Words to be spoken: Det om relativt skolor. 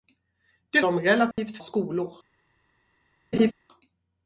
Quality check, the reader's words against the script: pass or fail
pass